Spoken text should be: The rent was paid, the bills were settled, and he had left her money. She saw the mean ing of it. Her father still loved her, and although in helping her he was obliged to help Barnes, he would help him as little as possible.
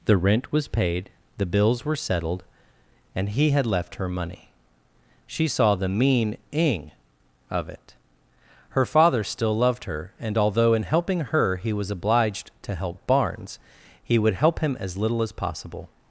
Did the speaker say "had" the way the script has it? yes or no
yes